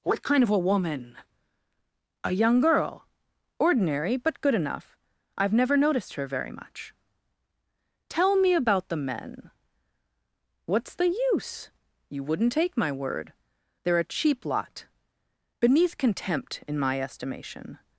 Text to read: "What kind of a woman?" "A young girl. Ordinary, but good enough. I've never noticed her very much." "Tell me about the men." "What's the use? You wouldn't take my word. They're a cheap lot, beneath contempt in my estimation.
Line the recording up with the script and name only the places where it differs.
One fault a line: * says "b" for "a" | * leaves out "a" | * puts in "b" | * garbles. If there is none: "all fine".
all fine